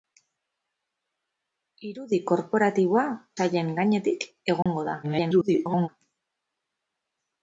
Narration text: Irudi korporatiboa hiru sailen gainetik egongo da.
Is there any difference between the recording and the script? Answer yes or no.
yes